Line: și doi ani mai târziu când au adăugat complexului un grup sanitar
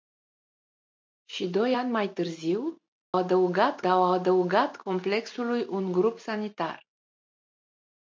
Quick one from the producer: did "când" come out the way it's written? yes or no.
no